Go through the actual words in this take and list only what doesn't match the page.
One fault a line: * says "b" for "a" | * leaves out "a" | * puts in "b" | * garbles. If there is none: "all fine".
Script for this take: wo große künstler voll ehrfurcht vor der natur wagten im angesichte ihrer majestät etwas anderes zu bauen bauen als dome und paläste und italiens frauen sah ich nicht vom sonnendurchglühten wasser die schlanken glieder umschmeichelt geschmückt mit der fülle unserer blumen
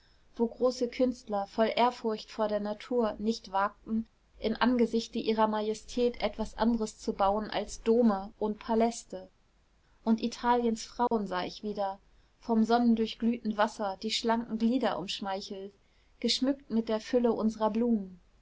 * puts in "nicht"
* leaves out "bauen"
* says "wieder" for "nicht"